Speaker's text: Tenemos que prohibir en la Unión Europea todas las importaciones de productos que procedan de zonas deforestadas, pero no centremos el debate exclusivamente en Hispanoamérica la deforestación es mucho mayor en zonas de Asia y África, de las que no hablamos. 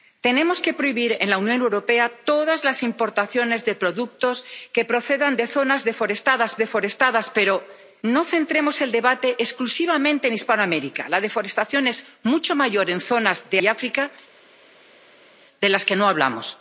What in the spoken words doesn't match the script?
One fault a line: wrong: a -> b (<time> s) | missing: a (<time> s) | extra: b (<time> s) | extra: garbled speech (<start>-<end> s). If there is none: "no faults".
extra: deforestadas (6.6 s)
missing: Asia (13.6 s)